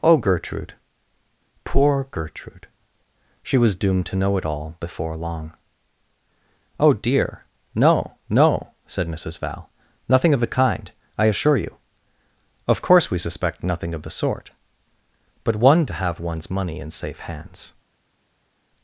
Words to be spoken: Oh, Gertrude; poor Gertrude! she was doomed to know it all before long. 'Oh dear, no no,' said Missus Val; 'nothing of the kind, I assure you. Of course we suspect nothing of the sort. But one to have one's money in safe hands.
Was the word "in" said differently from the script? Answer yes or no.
no